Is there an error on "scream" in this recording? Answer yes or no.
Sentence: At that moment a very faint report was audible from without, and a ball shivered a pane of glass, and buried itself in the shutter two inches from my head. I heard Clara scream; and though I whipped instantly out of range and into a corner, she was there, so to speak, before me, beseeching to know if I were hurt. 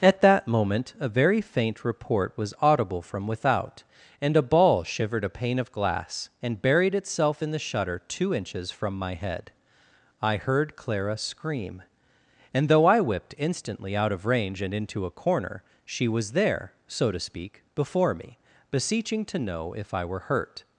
no